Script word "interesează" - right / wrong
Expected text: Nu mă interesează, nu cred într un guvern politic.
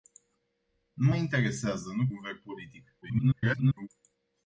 right